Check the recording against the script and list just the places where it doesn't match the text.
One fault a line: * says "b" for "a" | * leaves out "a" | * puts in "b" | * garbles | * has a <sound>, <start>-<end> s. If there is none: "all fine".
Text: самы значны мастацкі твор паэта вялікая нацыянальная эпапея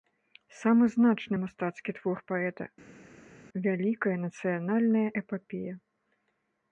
all fine